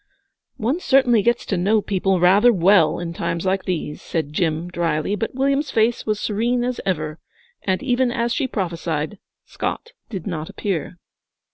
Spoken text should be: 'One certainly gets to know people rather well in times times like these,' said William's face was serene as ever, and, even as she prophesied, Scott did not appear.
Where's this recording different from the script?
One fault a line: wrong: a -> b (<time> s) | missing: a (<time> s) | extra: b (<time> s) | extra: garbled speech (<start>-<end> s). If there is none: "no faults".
missing: times (3.5 s)
extra: Jim drily but (4.3 s)